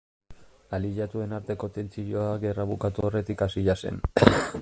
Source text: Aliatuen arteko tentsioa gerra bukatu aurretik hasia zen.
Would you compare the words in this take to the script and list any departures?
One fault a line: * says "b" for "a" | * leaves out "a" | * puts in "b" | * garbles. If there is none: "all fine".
all fine